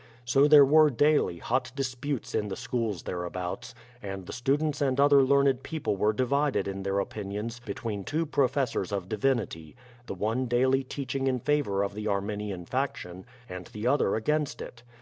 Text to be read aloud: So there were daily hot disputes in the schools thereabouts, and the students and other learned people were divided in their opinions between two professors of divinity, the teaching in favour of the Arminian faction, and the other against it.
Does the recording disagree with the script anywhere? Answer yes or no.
yes